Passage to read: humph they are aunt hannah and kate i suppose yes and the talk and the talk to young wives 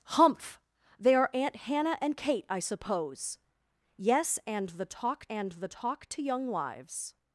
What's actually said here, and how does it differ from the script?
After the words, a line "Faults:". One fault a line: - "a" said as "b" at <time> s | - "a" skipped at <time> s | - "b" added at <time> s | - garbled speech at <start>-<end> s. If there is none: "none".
humph they are aunt hannah and kate i suppose yes and the talk and the talk to young wives
Faults:
none